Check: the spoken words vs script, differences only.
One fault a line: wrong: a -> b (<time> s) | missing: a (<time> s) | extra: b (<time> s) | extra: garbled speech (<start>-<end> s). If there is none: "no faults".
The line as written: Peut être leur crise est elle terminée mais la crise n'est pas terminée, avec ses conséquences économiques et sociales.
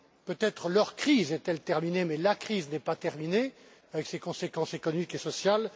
no faults